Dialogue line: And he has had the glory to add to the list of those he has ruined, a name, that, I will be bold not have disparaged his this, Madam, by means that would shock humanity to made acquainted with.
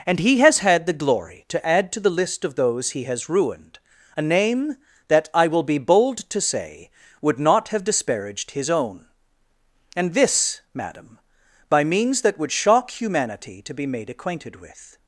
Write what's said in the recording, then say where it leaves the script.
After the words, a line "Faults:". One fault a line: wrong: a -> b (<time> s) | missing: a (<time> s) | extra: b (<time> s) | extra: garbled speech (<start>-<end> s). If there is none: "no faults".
And he has had the glory to add to the list of those he has ruined, a name, that, I will be bold to say, would not have disparaged his own. And this, Madam, by means that would shock humanity to be made acquainted with.
Faults:
extra: to say would (6.3 s)
extra: own And (8.7 s)
extra: be (13.7 s)